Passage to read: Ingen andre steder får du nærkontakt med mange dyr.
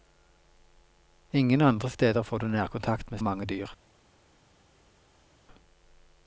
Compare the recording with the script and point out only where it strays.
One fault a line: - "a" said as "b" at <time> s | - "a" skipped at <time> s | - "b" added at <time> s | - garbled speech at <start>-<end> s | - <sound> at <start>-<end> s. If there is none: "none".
none